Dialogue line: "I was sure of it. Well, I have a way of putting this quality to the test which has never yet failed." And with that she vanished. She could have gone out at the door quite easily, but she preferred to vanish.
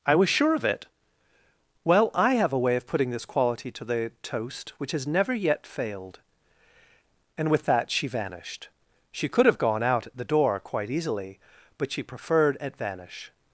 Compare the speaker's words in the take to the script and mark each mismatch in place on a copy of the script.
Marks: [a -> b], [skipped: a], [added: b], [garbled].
"I was sure of it. Well, I have a way of putting this quality to the [test -> toast] which has never yet failed." And with that she vanished. She could have gone out at the door quite easily, but she preferred [to -> at] vanish.